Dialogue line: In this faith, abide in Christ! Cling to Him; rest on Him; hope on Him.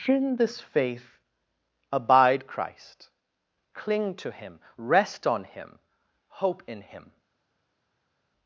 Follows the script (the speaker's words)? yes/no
no